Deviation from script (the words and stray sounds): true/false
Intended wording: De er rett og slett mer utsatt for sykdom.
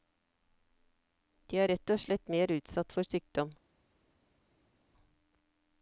false